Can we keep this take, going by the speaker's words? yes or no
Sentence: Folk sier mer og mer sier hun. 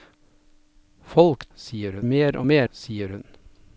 yes